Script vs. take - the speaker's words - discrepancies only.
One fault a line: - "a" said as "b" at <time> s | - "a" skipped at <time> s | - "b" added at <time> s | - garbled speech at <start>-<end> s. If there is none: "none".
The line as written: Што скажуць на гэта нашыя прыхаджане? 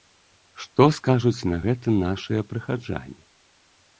none